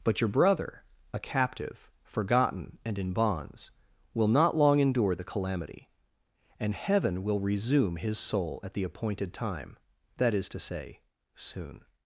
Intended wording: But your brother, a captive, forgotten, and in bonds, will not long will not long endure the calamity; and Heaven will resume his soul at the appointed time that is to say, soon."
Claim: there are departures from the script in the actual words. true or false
true